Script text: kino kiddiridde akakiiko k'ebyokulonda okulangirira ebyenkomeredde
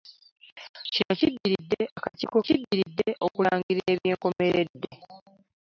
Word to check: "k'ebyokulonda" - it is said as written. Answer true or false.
false